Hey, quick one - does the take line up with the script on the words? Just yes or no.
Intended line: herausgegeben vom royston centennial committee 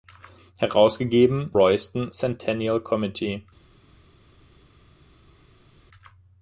no